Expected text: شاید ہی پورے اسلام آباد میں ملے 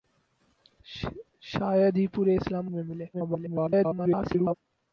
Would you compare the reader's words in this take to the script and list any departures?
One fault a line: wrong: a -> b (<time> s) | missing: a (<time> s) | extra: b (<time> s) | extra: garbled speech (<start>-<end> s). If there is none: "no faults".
missing: آباد (2.7 s)
extra: garbled speech (3.1-4.6 s)